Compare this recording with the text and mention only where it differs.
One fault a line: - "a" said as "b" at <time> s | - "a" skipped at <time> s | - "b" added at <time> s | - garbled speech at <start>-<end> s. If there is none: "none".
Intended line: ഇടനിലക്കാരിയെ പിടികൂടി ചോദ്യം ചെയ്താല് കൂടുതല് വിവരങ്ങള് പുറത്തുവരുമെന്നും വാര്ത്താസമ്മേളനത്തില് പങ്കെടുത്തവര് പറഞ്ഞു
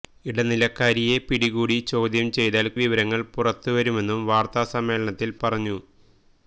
- "കൂടുതല്" skipped at 2.7 s
- "പങ്കെടുത്തവര്" skipped at 5.4 s